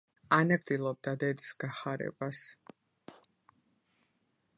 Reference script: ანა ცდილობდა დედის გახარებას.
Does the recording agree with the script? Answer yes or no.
yes